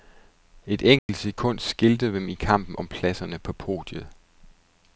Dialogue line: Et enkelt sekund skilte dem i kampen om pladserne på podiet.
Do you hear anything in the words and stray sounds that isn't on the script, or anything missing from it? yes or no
yes